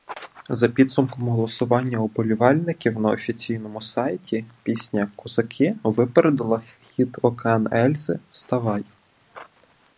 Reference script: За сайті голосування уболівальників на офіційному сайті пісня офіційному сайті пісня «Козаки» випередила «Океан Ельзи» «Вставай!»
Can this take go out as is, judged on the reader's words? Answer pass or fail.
fail